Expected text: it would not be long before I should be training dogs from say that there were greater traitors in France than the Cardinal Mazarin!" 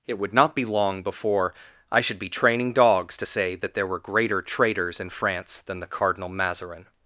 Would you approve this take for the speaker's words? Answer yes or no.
no